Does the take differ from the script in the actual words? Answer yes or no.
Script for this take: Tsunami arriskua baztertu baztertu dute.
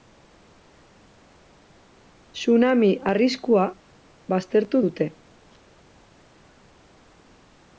yes